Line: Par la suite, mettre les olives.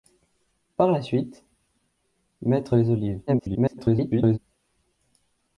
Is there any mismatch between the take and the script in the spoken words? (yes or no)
yes